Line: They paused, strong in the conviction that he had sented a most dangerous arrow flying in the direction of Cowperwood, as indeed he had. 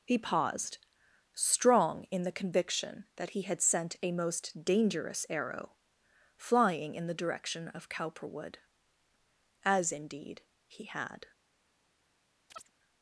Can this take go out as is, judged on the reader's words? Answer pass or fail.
fail